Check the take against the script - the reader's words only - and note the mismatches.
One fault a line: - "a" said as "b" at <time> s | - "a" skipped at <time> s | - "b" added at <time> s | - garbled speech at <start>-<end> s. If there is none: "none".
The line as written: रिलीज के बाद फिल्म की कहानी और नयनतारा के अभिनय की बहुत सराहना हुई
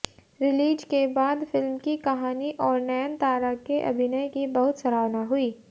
none